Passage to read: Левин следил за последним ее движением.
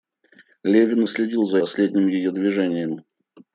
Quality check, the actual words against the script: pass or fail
pass